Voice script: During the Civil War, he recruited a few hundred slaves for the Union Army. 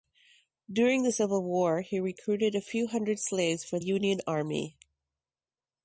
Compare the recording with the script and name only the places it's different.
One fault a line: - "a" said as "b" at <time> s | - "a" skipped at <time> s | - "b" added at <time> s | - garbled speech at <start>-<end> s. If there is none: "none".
- "the" skipped at 3.8 s